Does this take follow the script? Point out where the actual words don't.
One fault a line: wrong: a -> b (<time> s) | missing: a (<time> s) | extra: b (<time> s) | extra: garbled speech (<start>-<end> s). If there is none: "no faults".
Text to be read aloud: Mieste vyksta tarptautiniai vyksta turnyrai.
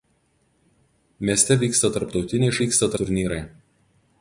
no faults